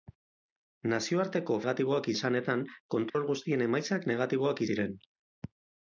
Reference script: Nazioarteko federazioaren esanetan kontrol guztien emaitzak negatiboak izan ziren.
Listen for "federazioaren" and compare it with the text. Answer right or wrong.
wrong